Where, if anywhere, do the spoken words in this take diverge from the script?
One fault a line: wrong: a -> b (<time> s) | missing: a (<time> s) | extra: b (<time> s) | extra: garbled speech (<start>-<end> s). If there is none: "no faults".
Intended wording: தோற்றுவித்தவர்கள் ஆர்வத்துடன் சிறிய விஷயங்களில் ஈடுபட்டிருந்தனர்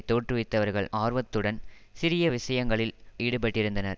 no faults